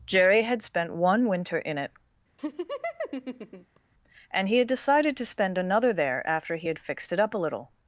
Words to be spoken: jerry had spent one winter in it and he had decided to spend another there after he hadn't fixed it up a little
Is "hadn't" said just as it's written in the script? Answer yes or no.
no